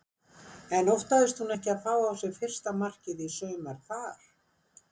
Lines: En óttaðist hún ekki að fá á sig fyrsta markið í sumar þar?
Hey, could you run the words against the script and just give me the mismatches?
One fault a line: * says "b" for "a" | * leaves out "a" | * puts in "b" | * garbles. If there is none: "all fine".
all fine